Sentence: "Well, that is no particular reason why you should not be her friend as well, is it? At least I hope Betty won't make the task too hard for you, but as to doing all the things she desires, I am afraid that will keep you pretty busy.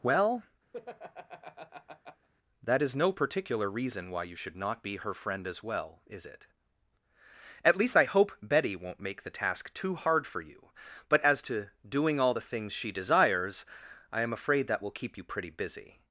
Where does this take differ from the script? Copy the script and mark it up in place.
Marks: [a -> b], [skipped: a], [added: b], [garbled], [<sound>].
"Well, [laugh] that is no particular reason why you should not be her friend as well, is it? At least I hope Betty won't make the task too hard for you, but as to doing all the things she desires, I am afraid that will keep you pretty busy.